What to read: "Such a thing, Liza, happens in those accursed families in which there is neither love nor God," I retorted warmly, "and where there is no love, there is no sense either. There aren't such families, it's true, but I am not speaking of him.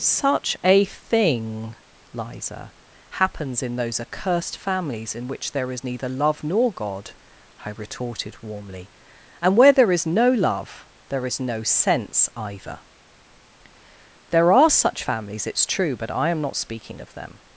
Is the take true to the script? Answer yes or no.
no